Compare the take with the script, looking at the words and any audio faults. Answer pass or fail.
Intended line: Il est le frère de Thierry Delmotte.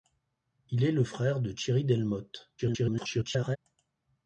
fail